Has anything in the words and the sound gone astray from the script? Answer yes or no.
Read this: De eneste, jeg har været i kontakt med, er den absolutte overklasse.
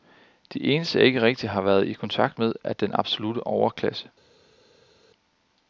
yes